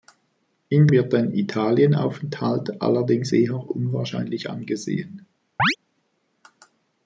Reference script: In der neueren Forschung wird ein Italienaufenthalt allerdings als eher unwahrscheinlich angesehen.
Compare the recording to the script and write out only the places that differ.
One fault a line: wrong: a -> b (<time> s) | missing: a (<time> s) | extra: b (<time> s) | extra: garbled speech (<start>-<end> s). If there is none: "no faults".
missing: der neueren Forschung (0.9 s)
missing: als (3.3 s)